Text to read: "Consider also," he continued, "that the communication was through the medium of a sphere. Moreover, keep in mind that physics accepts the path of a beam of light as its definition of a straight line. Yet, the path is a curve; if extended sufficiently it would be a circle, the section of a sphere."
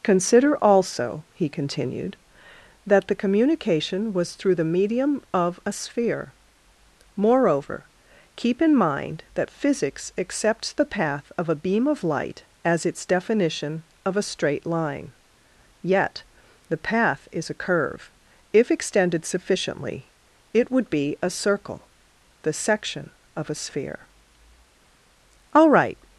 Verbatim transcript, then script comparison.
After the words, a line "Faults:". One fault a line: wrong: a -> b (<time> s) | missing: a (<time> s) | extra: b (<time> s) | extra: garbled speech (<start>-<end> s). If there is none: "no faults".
"Consider also," he continued, "that the communication was through the medium of a sphere. Moreover, keep in mind that physics accepts the path of a beam of light as its definition of a straight line. Yet, the path is a curve; if extended sufficiently it would be a circle, the section of a sphere." "All right
Faults:
extra: All right (25.5 s)